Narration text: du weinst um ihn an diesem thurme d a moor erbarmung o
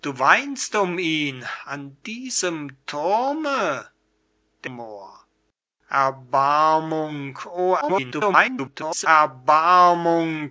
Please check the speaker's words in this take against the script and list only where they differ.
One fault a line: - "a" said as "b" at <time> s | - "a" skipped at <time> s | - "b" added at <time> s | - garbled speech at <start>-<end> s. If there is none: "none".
- "a" skipped at 4.7 s
- garbled speech at 7.8-9.1 s